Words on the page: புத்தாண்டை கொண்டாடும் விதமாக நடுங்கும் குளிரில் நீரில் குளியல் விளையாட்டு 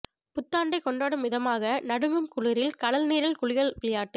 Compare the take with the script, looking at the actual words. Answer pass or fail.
fail